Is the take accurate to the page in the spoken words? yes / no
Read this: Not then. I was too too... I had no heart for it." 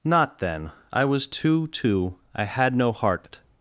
no